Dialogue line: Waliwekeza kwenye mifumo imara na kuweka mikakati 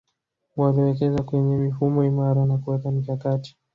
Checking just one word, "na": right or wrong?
right